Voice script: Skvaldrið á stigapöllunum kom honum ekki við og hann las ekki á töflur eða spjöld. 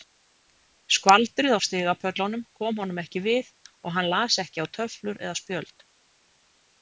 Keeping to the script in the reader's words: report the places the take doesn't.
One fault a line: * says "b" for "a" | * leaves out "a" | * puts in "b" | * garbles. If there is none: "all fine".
all fine